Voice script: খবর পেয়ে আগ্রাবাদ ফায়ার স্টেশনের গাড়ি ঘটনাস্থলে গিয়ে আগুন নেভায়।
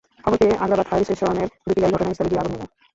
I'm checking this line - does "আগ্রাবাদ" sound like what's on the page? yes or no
yes